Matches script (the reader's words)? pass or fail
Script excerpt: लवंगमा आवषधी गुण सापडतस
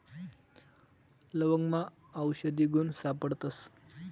pass